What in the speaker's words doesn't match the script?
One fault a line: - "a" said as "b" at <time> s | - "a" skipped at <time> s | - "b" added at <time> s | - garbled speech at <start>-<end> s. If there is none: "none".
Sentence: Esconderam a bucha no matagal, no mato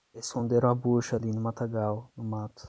- "ali" added at 1.1 s